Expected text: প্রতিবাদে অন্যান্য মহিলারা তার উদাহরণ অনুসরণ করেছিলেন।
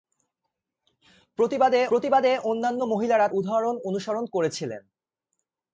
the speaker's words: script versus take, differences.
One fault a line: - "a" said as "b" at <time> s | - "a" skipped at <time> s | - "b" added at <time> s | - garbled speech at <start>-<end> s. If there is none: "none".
- "প্রতিবাদে" added at 1.9 s
- "তার" skipped at 3.3 s